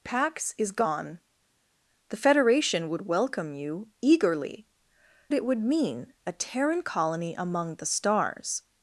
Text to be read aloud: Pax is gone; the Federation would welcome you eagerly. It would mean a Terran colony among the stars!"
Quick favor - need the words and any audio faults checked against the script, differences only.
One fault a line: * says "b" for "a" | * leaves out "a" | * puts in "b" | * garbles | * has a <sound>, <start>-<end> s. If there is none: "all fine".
all fine